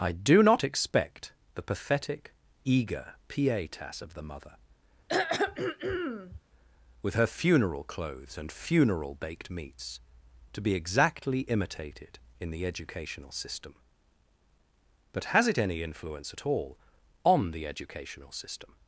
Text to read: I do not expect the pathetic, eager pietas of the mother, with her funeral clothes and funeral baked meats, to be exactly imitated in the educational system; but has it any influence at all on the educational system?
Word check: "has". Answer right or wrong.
right